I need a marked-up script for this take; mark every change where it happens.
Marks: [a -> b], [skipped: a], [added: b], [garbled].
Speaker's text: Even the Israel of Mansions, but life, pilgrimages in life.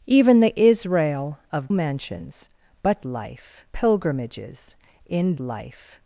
Even the Israel of Mansions, but life, pilgrimages in life.